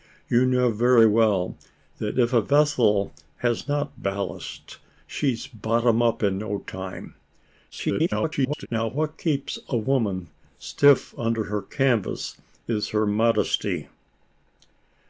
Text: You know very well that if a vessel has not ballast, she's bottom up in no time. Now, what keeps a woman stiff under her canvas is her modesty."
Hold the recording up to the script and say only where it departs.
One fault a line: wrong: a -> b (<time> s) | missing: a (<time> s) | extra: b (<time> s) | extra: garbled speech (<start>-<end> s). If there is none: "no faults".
extra: garbled speech (7.7-8.7 s)